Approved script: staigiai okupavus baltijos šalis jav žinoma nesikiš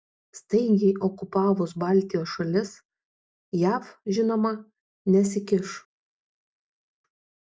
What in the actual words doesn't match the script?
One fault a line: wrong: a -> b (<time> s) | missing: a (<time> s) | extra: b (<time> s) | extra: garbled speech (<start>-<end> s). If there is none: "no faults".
no faults